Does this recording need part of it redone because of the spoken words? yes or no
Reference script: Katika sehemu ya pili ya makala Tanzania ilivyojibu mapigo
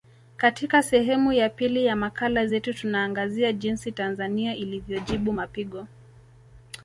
yes